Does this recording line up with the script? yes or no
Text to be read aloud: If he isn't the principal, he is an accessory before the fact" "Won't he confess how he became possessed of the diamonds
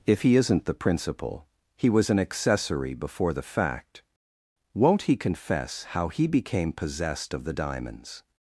no